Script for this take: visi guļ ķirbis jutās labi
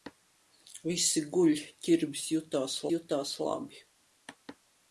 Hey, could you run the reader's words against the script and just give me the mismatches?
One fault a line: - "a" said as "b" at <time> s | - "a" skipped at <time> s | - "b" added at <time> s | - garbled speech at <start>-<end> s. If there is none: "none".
- "jutās" added at 2.9 s